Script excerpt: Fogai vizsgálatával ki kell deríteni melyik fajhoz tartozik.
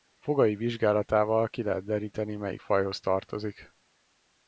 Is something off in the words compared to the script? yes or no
yes